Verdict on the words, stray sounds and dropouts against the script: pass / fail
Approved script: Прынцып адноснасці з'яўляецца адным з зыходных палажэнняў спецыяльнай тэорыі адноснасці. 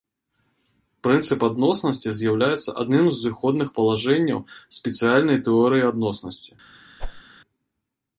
fail